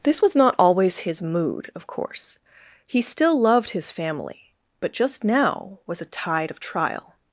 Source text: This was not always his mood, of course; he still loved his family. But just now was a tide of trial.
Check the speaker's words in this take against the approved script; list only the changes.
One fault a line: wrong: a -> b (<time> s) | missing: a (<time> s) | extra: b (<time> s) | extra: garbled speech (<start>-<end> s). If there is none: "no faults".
no faults